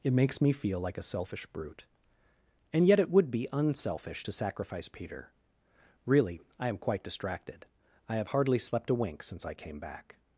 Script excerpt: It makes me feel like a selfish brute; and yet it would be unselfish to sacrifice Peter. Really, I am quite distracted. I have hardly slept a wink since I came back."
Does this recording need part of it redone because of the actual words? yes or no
no